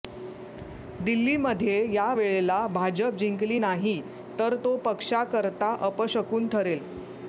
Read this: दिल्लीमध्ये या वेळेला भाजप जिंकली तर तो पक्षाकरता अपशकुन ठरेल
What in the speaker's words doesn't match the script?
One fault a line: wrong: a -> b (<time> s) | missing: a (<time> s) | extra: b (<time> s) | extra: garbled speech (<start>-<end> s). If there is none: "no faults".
extra: नाही (3.6 s)